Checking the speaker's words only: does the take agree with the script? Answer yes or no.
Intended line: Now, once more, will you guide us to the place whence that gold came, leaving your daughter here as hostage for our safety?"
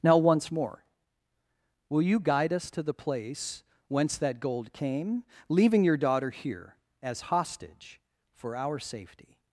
yes